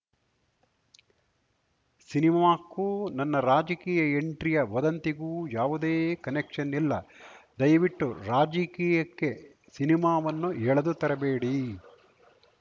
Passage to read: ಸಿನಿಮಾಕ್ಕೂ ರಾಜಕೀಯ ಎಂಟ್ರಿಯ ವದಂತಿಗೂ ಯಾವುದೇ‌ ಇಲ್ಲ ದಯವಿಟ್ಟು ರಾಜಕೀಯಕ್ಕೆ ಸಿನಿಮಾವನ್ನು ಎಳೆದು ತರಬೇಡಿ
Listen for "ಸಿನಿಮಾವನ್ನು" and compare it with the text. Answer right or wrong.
right